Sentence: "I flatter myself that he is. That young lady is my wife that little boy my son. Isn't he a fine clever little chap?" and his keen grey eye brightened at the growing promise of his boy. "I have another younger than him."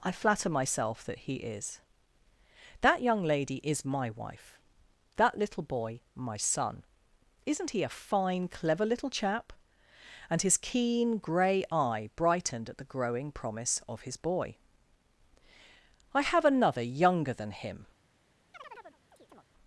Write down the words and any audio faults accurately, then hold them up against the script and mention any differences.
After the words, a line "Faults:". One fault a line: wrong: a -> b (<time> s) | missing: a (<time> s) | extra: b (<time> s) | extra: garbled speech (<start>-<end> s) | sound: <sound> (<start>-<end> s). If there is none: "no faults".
"I flatter myself that he is. That young lady is my wife that little boy my son. Isn't he a fine clever little chap?" and his keen grey eye brightened at the growing promise of his boy. "I have another younger than him."
Faults:
sound: chirp (18.5-19.4 s)